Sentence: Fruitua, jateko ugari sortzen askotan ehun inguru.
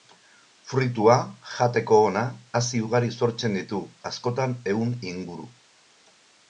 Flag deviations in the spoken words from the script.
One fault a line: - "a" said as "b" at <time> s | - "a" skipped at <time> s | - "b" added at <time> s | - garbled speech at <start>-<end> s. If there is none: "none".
- "ona hazi" added at 2.1 s
- "ditu" added at 3.6 s